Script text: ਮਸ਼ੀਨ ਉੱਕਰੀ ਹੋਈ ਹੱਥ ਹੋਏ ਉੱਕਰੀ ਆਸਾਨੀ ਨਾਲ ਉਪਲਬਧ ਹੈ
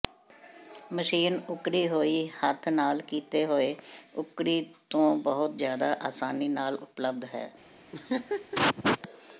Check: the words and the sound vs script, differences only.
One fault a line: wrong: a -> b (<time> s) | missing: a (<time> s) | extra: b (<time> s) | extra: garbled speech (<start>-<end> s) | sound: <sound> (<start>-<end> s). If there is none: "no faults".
extra: ਨਾਲ ਕੀਤੇ (2.7 s)
extra: ਤੋਂ ਬਹੁਤ ਜ਼ਿਆਦਾ (4.9 s)
sound: laugh (7.9-9.0 s)